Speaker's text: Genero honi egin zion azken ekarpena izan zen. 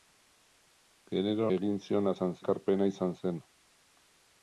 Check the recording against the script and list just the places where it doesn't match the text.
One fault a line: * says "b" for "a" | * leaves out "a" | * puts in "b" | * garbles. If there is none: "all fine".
* leaves out "honi"
* says "izan" for "azken"